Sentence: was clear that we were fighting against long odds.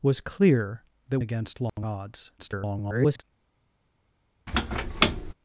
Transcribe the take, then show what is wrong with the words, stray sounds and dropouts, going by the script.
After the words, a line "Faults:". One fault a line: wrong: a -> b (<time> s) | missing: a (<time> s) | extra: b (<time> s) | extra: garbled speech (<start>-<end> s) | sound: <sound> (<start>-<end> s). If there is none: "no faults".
was clear that against long odds. [garbled]
Faults:
missing: we were fighting (1.2 s)
sound: dropout (1.7-1.8 s)
extra: garbled speech (2.4-3.2 s)
sound: squeak (4.5-5.3 s)